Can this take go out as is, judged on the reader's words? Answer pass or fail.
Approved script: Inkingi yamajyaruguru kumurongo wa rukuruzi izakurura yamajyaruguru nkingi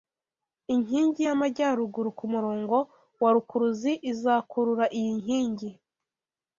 fail